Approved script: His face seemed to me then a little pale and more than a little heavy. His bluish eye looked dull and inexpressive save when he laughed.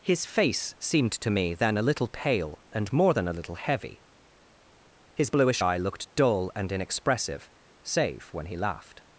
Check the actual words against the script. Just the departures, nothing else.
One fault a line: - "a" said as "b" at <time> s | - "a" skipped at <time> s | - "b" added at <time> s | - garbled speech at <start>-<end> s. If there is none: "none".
none